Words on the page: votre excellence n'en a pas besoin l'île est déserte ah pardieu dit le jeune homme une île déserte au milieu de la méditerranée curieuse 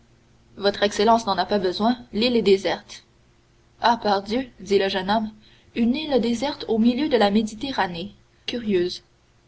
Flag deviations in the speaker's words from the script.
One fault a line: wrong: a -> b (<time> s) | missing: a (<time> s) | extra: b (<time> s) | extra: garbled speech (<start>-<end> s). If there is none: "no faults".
no faults